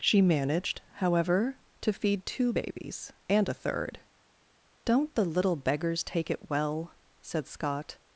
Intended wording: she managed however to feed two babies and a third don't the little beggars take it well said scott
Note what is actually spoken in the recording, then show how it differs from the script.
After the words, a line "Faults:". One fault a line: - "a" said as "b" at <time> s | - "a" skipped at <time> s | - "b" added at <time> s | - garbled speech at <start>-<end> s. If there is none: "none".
she managed however to feed two babies and a third don't the little beggars take it well said scott
Faults:
none